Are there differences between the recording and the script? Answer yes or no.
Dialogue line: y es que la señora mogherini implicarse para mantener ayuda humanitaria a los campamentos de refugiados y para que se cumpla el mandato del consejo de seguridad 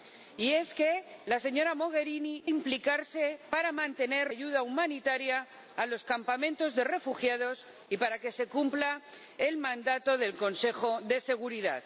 no